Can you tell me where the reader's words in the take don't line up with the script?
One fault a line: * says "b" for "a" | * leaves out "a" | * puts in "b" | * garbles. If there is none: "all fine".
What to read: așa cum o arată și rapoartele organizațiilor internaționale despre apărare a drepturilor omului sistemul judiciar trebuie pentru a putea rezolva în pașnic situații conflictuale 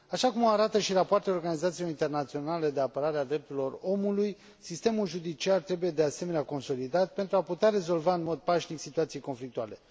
* says "de" for "despre"
* puts in "de asemenea consolidat"
* puts in "mod"